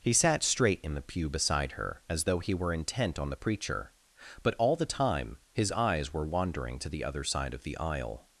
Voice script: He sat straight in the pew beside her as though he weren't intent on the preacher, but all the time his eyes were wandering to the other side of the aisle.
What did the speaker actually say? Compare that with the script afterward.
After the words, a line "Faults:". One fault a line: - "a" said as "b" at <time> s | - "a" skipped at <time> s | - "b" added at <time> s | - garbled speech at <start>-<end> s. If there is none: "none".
He sat straight in the pew beside her as though he were intent on the preacher, but all the time his eyes were wandering to the other side of the aisle.
Faults:
- "weren't" said as "were" at 2.5 s